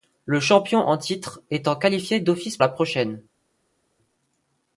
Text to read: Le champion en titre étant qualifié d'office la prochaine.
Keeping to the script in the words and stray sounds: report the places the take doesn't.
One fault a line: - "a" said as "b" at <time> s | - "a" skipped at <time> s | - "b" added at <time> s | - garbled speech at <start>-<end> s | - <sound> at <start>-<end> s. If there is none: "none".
none